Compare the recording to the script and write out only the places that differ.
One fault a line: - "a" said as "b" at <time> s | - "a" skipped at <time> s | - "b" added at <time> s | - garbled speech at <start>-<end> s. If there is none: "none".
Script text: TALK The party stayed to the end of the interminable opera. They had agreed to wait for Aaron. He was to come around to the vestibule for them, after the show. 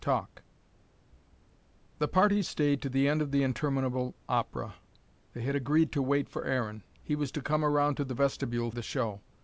- "for them after" skipped at 8.7 s